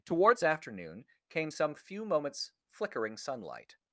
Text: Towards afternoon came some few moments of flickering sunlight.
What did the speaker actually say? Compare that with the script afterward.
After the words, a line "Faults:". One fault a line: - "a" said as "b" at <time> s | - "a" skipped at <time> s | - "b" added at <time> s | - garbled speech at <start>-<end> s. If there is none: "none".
Towards afternoon came some few moments flickering sunlight.
Faults:
- "of" skipped at 2.5 s